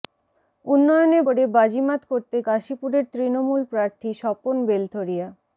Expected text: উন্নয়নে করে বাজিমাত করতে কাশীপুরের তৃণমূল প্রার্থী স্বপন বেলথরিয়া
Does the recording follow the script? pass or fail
pass